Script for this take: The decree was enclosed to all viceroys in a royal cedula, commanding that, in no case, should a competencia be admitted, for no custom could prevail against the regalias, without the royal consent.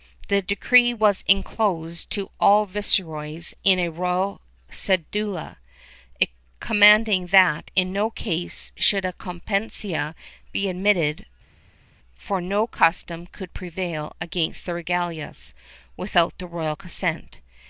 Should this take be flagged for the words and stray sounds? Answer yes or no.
no